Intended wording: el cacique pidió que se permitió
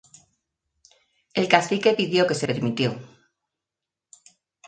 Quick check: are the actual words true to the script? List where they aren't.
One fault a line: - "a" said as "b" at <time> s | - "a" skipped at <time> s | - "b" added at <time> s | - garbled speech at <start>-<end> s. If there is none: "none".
none